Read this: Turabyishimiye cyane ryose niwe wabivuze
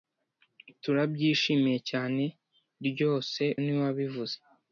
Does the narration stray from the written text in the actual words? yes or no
no